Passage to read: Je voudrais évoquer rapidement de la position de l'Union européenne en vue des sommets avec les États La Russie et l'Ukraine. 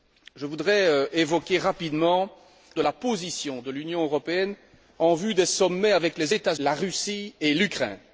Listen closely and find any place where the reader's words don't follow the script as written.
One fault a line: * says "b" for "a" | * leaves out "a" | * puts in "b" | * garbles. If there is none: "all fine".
all fine